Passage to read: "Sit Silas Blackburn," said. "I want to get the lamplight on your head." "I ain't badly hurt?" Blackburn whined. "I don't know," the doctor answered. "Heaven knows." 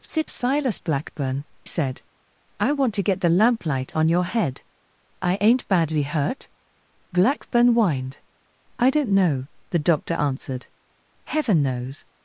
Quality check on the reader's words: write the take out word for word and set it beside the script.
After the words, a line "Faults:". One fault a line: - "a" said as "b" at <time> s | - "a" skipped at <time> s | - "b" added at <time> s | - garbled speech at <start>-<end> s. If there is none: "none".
"Sit Silas Blackburn," said. "I want to get the lamplight on your head." "I ain't badly hurt?" Blackburn whined. "I don't know," the doctor answered. "Heaven knows."
Faults:
none